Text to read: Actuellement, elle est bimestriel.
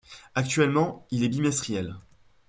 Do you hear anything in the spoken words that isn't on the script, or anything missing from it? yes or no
yes